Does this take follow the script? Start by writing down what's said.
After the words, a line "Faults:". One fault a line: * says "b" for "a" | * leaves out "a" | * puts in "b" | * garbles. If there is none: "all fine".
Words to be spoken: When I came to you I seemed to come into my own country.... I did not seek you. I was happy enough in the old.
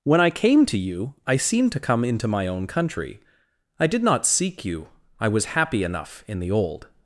When I came to you I seemed to come into my own country.... I did not seek you. I was happy enough in the old.
Faults:
all fine